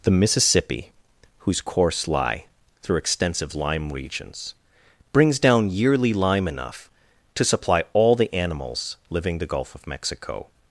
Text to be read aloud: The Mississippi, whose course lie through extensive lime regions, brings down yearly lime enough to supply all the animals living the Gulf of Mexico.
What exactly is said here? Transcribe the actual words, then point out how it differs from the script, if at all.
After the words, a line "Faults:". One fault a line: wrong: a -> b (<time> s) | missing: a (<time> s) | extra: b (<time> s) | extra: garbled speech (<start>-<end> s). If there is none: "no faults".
The Mississippi, whose course lie through extensive lime regions, brings down yearly lime enough to supply all the animals living the Gulf of Mexico.
Faults:
no faults